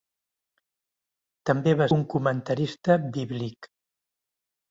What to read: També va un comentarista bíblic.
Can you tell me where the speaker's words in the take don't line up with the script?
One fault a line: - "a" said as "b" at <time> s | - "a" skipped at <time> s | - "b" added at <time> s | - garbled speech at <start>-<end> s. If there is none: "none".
none